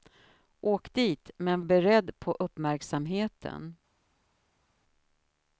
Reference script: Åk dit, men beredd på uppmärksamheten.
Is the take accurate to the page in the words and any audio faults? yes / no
yes